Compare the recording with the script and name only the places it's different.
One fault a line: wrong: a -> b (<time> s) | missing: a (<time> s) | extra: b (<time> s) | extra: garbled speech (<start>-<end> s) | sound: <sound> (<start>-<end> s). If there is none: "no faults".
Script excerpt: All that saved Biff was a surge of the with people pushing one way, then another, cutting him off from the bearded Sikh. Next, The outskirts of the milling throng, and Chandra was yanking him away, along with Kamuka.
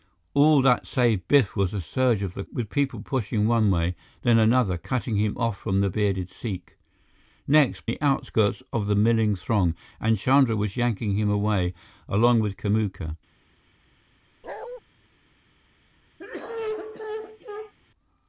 sound: bark (14.4-14.8 s)
sound: cough (16.2-17.7 s)